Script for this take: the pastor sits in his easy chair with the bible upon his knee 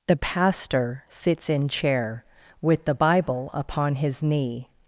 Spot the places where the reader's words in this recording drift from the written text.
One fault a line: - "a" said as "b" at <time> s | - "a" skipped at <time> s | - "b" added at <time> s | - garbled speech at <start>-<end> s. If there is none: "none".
- "his easy" skipped at 1.7 s